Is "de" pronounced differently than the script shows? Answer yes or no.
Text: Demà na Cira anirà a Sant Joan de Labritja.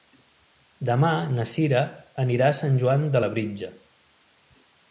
no